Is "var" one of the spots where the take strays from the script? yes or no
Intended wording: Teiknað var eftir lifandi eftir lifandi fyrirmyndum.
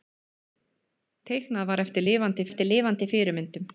no